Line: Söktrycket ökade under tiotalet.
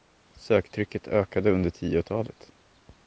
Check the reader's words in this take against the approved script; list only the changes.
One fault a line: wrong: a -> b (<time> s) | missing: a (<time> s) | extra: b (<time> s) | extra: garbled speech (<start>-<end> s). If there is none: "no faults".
no faults